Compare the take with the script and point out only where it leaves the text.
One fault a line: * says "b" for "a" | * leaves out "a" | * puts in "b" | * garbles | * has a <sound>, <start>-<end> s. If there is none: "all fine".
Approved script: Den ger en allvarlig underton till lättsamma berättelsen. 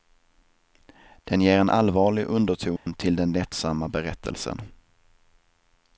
* has a dropout, 2.8-2.9 s
* puts in "den"